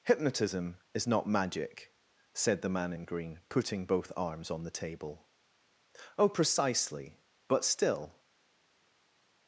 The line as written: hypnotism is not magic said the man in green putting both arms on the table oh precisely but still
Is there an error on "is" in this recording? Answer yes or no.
no